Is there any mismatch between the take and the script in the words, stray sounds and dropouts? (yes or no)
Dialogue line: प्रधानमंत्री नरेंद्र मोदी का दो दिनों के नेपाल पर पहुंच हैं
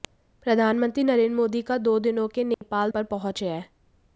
yes